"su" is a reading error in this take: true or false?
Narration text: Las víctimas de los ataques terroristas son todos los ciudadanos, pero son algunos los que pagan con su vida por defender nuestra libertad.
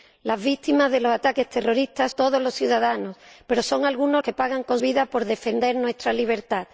true